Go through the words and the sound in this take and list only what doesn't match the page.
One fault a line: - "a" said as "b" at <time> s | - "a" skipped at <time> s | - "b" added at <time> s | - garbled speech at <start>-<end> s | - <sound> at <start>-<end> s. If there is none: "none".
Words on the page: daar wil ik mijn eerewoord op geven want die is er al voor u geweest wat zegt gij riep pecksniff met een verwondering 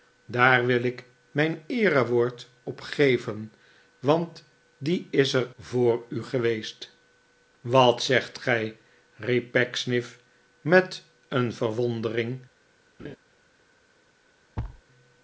- "al" skipped at 5.5 s
- laugh at 13.0-13.2 s
- thud at 14.6-14.8 s